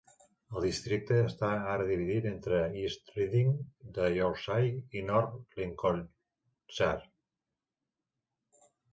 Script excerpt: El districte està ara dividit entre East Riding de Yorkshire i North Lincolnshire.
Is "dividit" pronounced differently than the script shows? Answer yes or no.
no